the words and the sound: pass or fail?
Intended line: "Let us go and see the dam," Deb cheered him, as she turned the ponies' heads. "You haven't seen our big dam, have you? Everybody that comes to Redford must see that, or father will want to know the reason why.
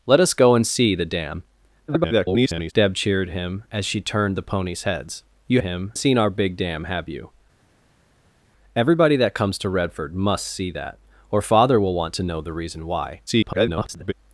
fail